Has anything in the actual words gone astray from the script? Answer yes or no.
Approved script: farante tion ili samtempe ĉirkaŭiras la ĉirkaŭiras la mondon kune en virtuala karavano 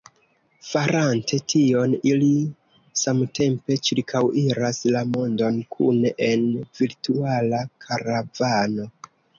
yes